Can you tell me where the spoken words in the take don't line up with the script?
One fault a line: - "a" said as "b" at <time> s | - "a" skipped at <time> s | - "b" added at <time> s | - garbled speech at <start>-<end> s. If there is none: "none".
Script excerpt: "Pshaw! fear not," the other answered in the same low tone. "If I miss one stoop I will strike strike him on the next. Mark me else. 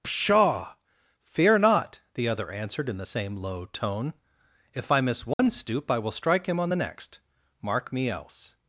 - "strike" skipped at 6.5 s